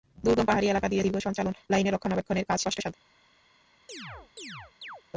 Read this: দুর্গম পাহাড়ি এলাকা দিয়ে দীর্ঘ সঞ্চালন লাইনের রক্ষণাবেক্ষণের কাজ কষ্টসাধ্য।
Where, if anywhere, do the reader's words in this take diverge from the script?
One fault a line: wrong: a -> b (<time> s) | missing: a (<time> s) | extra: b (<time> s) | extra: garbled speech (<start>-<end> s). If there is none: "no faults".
no faults